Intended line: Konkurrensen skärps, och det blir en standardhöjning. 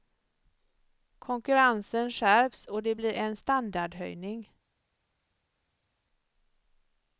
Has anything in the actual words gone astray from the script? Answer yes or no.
no